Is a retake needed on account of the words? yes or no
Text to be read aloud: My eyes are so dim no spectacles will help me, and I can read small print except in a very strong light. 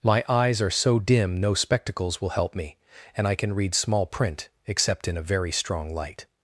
no